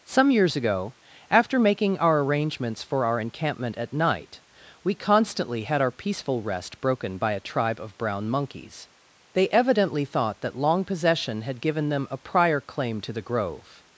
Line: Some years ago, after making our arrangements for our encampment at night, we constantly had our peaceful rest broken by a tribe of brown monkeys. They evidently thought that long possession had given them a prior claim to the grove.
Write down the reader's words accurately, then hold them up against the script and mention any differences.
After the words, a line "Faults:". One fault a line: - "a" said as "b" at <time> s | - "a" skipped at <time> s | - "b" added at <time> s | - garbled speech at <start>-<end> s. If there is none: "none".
Some years ago, after making our arrangements for our encampment at night, we constantly had our peaceful rest broken by a tribe of brown monkeys. They evidently thought that long possession had given them a prior claim to the grove.
Faults:
none